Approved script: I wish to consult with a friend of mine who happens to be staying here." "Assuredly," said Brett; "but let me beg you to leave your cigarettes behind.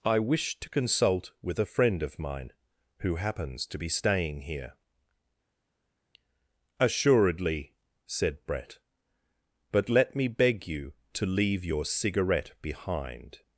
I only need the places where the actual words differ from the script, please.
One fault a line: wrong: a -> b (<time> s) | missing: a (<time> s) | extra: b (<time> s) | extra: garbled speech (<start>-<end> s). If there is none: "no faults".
wrong: cigarettes -> cigarette (11.9 s)